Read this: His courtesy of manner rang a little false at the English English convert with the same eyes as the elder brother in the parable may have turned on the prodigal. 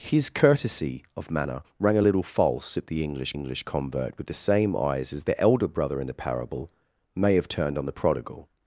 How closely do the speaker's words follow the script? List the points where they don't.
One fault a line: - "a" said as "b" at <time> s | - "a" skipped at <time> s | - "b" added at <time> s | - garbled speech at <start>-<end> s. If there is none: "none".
none